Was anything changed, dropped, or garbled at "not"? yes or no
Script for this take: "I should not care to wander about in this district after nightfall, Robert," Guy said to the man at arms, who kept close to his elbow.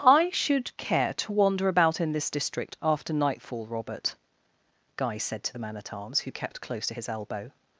yes